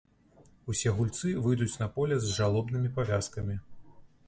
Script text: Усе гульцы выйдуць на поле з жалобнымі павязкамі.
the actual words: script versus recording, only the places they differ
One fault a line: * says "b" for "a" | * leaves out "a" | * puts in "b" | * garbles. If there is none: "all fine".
all fine